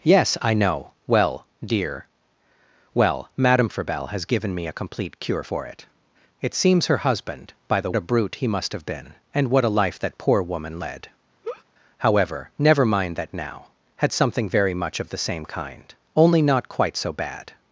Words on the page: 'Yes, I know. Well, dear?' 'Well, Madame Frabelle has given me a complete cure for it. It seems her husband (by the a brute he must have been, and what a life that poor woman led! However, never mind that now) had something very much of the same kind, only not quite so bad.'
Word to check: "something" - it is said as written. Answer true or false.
true